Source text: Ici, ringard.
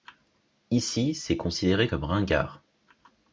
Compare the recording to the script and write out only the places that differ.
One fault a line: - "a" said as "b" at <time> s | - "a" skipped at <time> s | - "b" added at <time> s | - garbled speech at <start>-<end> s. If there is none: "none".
- "c'est considéré comme" added at 1.1 s